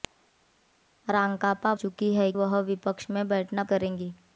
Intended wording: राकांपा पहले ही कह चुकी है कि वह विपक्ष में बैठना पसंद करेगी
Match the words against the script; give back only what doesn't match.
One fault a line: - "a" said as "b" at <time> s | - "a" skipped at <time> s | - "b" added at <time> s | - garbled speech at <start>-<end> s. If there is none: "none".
- "पहले ही कह" skipped at 1.7 s
- "कि" skipped at 2.3 s
- "पसंद" skipped at 3.6 s